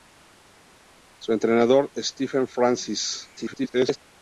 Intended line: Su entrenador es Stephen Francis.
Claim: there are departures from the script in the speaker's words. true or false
true